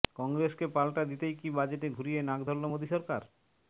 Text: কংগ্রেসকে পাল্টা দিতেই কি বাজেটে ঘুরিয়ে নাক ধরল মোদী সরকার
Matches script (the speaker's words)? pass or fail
pass